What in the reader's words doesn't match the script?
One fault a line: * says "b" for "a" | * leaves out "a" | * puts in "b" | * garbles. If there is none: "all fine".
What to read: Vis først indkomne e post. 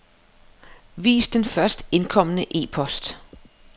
* puts in "den"